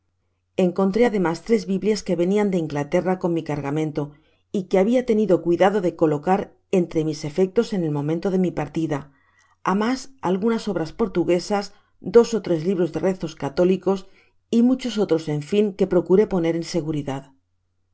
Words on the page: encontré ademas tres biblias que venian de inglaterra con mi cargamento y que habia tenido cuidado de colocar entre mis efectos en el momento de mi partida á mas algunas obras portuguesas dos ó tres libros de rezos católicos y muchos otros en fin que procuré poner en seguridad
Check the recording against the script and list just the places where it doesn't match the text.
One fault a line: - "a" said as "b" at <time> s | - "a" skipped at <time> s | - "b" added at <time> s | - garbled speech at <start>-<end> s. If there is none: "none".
none